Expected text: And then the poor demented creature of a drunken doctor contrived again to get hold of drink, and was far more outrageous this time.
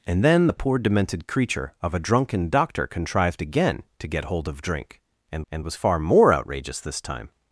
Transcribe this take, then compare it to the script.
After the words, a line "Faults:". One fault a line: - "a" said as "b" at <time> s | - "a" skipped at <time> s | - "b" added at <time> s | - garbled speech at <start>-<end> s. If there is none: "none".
And then the poor demented creature of a drunken doctor contrived again to get hold of drink, and and was far more outrageous this time.
Faults:
- "and" added at 5.5 s